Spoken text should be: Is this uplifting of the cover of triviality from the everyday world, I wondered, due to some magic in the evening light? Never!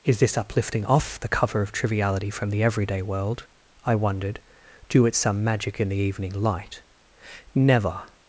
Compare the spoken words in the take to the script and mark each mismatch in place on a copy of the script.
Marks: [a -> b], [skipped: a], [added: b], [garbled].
Is this uplifting [of -> off] the cover of triviality from the everyday world, I wondered, due [to -> at] some magic in the evening light? Never!